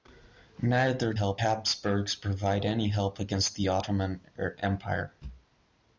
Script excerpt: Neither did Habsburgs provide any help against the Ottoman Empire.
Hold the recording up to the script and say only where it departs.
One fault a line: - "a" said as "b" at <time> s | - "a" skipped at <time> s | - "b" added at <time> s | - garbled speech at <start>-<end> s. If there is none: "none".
- "did" said as "help" at 1.1 s